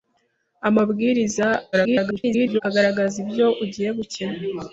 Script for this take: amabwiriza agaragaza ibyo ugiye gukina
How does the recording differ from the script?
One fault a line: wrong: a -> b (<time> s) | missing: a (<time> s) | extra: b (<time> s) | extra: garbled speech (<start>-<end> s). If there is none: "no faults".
extra: garbled speech (1.7-2.6 s)